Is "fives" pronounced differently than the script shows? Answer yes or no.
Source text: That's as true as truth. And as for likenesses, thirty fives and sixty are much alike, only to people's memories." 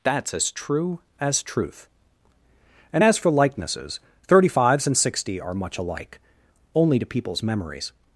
no